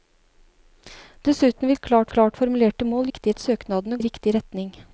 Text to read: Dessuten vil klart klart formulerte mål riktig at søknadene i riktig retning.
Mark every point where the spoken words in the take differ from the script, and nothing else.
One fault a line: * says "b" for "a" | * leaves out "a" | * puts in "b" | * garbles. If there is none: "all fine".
all fine